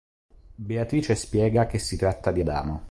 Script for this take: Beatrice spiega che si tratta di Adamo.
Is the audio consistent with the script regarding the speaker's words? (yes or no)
yes